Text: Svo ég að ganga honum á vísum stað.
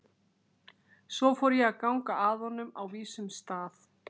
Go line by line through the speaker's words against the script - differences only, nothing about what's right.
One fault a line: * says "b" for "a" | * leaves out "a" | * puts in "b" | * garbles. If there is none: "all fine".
* puts in "fór"
* puts in "að"